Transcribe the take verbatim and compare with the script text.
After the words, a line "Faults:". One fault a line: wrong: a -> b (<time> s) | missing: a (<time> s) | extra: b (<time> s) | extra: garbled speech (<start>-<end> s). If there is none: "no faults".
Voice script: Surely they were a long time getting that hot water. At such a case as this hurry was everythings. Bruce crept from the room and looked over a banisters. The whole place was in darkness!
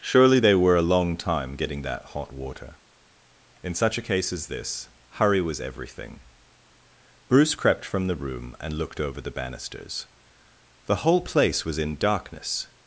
Surely they were a long time getting that hot water. In such a case as this hurry was everything. Bruce crept from the room and looked over the banisters. The whole place was in darkness!
Faults:
wrong: At -> In (3.6 s)
wrong: everythings -> everything (5.6 s)
wrong: a -> the (9.2 s)